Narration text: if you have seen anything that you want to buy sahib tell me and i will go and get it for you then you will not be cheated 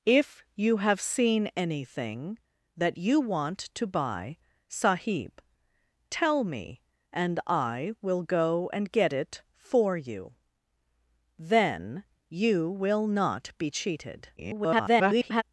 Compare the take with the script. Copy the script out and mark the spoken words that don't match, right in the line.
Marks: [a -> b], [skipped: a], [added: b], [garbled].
if you have seen anything that you want to buy sahib tell me and i will go and get it for you then you will not be cheated [garbled]